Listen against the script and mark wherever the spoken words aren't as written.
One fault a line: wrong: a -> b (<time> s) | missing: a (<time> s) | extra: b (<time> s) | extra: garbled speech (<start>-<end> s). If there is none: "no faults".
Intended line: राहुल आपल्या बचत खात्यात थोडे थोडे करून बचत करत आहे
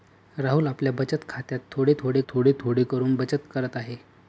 extra: थोडे थोडे (2.3 s)